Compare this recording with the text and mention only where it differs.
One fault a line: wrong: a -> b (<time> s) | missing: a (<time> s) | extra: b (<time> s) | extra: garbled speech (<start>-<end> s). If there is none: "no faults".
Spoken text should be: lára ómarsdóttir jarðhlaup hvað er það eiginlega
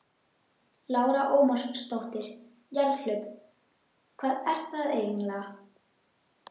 no faults